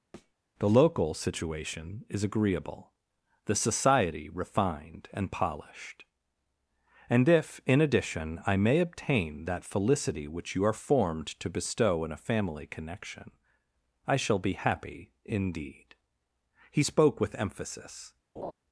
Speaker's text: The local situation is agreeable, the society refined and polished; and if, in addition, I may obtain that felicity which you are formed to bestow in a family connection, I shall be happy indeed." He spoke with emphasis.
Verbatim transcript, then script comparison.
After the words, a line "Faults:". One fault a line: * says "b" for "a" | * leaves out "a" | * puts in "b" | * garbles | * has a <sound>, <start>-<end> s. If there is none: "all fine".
The local situation is agreeable, the society refined and polished; and if, in addition, I may obtain that felicity which you are formed to bestow in a family connection, I shall be happy indeed." He spoke with emphasis.
Faults:
* has a thud, 0.1-0.3 s
* has a laugh, 18.4-18.5 s